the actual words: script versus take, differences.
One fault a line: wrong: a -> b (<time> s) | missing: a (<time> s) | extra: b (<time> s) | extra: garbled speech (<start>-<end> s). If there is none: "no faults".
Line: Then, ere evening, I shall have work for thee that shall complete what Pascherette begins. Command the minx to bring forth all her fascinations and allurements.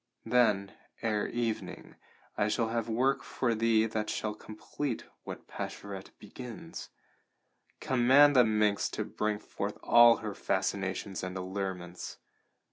no faults